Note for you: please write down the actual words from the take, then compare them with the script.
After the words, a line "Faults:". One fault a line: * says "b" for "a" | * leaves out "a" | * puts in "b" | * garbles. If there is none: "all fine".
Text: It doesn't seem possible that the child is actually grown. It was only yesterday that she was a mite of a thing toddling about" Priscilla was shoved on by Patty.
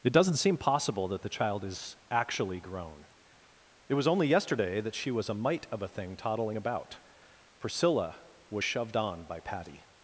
It doesn't seem possible that the child is actually grown. It was only yesterday that she was a mite of a thing toddling about" Priscilla was shoved on by Patty.
Faults:
all fine